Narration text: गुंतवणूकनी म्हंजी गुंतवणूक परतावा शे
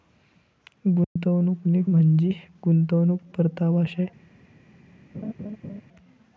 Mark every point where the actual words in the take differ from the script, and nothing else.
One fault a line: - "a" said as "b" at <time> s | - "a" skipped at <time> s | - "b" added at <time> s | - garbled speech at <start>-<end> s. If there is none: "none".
none